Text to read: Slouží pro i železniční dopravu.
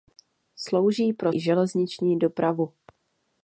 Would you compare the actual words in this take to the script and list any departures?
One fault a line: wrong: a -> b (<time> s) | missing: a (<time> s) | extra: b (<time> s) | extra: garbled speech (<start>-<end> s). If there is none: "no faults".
no faults